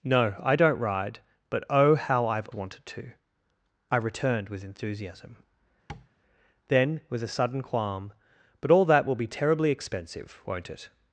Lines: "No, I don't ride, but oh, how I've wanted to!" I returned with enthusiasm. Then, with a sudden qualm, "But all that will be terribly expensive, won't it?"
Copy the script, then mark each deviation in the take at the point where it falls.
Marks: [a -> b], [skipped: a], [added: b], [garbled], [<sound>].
"No, I don't ride, but oh, how I've wanted to!" I returned with enthusiasm. [tap] Then, with a sudden qualm, "But all that will be terribly expensive, won't it?"